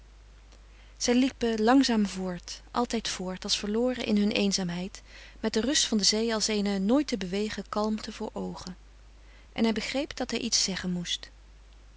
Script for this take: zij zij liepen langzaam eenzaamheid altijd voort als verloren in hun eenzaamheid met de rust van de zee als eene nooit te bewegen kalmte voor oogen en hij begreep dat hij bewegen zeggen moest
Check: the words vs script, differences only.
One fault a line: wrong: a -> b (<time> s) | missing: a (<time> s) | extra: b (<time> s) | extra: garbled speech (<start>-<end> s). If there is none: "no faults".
missing: zij (1.1 s)
wrong: eenzaamheid -> voort (2.1 s)
wrong: bewegen -> iets (10.4 s)